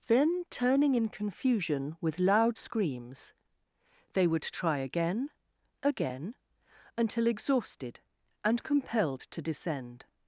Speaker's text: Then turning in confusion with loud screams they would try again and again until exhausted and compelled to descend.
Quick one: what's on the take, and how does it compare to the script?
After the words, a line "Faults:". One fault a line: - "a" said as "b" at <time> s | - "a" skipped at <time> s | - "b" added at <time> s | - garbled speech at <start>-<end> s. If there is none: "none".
Then turning in confusion with loud screams they would try again again until exhausted and compelled to descend.
Faults:
- "and" skipped at 5.3 s